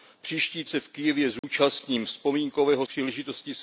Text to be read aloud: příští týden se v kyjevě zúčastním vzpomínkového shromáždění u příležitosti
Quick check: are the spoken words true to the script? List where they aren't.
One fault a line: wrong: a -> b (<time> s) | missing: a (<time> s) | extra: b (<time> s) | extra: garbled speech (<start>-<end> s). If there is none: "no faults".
missing: týden (0.6 s)
missing: shromáždění u (2.9 s)